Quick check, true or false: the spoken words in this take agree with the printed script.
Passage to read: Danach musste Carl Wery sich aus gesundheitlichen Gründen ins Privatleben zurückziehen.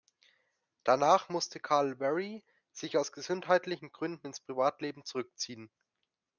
true